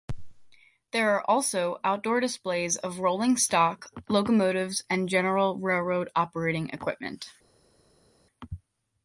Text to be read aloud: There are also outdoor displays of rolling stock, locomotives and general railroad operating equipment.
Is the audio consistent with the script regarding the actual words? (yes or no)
yes